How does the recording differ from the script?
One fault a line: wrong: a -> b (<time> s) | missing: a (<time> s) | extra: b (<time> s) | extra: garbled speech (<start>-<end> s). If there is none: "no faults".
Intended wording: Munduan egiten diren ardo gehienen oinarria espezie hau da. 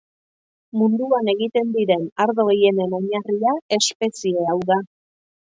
no faults